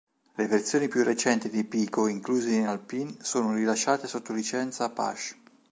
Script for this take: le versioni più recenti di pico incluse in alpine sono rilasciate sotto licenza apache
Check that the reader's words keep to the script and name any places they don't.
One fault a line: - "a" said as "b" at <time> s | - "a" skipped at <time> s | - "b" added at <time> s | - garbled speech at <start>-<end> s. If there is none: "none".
none